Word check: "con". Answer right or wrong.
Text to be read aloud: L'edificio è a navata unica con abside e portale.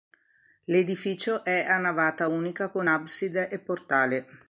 right